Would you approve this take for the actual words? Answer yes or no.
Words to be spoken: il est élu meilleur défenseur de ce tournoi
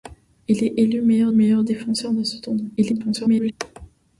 no